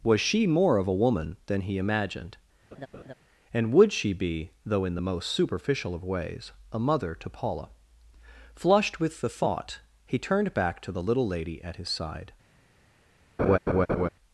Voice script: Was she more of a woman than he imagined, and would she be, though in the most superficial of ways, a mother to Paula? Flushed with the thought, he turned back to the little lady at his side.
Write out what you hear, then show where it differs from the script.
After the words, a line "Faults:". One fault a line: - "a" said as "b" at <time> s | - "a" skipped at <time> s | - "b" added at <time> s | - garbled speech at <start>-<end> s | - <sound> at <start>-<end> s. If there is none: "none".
Was she more of a woman than he imagined, and would she be, though in the most superficial of ways, a mother to Paula? Flushed with the thought, he turned back to the little lady at his side.
Faults:
- laugh at 2.7-3.1 s
- laugh at 13.4-14.1 s